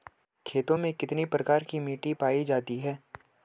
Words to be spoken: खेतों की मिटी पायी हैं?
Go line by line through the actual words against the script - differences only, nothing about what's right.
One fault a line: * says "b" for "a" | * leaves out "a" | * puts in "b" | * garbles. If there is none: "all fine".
* puts in "में कितने प्रकार"
* puts in "जाती"